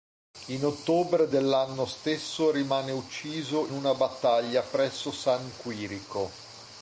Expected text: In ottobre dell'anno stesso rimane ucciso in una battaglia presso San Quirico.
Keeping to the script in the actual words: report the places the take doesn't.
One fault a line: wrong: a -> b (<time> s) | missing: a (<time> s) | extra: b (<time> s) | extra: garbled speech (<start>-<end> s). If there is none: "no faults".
missing: in (3.7 s)